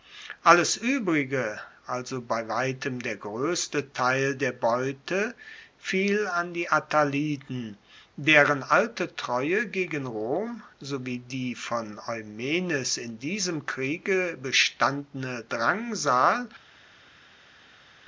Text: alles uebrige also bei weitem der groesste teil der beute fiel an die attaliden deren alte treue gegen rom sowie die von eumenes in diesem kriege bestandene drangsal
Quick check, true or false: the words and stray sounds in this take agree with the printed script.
true